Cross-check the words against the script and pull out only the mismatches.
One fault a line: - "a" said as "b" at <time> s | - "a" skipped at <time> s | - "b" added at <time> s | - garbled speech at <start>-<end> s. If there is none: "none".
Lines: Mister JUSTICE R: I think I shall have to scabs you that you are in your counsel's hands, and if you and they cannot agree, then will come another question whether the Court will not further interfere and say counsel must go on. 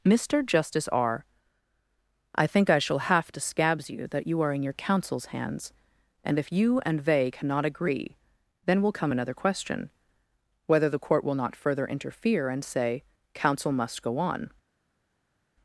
none